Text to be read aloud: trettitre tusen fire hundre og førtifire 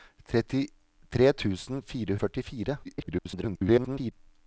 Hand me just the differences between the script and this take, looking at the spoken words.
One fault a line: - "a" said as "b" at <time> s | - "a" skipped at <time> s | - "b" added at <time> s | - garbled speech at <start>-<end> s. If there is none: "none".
- "hundre" skipped at 2.2 s
- garbled speech at 2.8-4.1 s